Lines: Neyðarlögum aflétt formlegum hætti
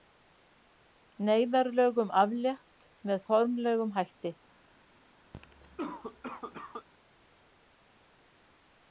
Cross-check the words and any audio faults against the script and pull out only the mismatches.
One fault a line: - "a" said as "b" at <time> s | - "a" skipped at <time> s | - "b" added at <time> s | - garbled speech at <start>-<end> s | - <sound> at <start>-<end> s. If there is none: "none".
- "með" added at 3.1 s
- cough at 5.3-6.9 s